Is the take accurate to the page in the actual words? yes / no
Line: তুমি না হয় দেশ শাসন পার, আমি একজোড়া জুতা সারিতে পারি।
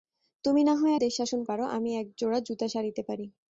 yes